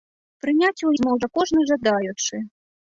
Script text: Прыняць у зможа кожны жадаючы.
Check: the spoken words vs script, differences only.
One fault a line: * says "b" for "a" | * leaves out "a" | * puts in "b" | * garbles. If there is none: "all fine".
all fine